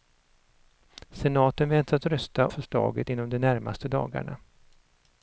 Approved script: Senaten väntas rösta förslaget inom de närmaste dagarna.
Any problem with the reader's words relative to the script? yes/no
no